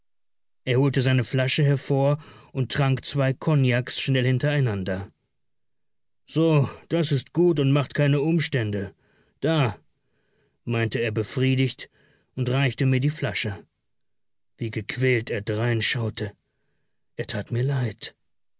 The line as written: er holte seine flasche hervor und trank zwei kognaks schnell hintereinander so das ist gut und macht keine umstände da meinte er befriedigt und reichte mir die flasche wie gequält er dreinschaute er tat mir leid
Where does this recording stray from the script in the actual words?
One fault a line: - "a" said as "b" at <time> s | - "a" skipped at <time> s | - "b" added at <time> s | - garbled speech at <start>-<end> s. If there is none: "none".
none